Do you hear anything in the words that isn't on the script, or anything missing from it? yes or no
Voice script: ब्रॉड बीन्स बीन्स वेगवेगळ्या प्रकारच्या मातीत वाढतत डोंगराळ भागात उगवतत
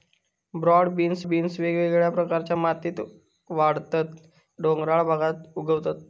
no